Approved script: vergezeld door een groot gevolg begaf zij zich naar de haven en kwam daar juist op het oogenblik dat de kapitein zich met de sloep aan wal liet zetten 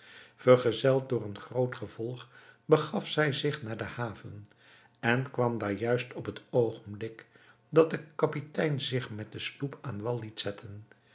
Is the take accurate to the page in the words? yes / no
yes